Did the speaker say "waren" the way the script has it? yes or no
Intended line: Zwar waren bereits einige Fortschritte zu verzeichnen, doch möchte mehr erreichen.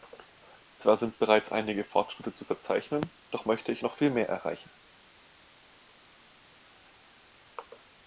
no